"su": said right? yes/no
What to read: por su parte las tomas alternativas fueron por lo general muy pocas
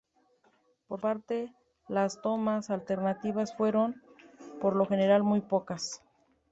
no